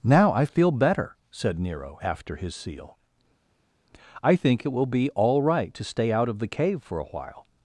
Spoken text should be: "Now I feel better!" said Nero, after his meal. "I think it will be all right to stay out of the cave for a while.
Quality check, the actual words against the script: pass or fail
fail